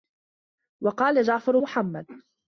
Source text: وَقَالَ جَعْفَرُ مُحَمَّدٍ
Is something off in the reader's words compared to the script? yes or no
no